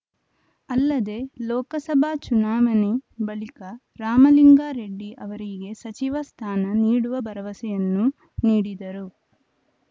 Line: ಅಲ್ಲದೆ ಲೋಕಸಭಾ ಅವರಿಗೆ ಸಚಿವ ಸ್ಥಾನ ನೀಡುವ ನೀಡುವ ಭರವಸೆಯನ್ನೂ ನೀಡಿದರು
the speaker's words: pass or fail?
fail